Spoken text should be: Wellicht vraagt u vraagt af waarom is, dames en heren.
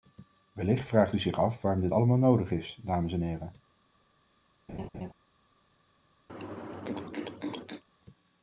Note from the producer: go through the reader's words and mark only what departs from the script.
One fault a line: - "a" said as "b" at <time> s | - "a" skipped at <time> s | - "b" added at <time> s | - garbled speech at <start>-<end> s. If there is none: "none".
- "vraagt" said as "zich" at 1.2 s
- "dit allemaal nodig" added at 1.8 s